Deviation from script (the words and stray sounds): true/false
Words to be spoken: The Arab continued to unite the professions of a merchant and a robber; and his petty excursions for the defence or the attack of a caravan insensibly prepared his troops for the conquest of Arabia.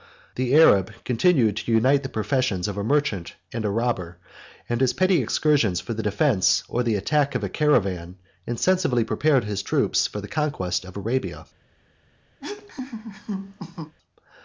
true